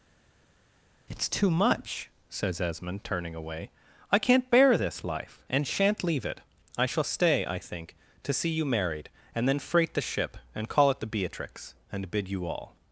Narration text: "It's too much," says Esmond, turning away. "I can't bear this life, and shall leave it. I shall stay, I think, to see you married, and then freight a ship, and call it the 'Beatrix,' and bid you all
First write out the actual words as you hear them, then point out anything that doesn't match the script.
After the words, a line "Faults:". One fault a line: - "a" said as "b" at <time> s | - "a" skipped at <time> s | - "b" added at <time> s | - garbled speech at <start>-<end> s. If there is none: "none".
"It's too much," says Esmond, turning away. "I can't bear this life, and shan't leave it. I shall stay, I think, to see you married, and then freight the ship, and call it the 'Beatrix,' and bid you all
Faults:
- "shall" said as "shan't" at 5.7 s
- "a" said as "the" at 9.9 s